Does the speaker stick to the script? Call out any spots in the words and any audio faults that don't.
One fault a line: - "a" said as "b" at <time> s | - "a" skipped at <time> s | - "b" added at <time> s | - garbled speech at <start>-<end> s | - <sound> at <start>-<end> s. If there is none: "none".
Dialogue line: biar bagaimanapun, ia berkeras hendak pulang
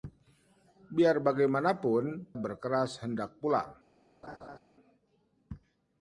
- "ia" skipped at 2.3 s
- laugh at 4.2-4.6 s